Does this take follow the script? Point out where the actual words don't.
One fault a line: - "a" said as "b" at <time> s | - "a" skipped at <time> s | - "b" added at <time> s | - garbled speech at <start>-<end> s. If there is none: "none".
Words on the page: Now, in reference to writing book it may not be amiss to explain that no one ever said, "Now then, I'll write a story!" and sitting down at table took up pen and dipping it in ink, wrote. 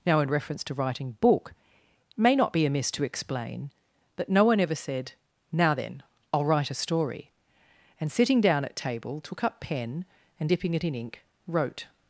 none